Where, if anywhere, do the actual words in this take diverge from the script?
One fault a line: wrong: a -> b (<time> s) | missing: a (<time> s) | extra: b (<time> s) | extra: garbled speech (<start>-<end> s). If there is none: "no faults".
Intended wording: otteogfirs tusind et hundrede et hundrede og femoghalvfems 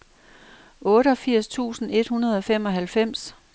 missing: et hundrede (2.4 s)